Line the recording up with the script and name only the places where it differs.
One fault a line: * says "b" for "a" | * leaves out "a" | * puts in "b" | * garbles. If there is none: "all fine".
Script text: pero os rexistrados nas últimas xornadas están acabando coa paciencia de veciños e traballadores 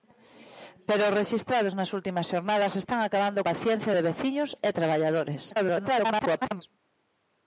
* leaves out "coa"
* garbles